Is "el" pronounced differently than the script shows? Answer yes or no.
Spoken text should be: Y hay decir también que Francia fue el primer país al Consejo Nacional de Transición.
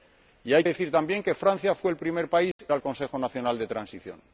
no